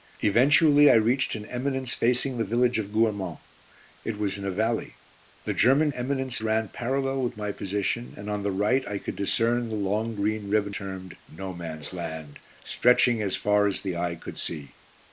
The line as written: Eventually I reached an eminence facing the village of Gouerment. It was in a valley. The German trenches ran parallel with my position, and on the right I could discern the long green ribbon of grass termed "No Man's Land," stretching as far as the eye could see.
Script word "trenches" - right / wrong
wrong